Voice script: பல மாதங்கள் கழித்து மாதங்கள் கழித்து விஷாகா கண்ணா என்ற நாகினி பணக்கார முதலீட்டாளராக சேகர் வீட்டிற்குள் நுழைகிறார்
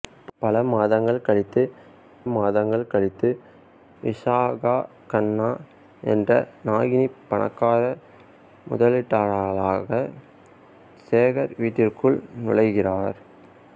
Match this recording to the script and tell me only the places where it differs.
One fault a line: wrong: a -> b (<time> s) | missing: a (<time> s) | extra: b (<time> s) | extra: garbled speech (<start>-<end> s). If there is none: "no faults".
no faults